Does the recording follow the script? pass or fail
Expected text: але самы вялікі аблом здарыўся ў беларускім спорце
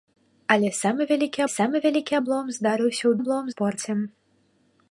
fail